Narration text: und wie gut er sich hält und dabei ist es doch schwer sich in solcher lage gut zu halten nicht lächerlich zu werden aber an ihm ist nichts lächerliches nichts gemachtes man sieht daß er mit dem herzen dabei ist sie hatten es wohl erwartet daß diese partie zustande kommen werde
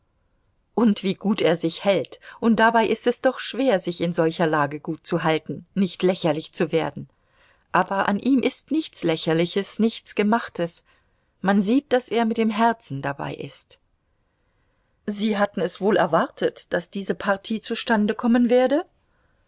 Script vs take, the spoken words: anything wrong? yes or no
no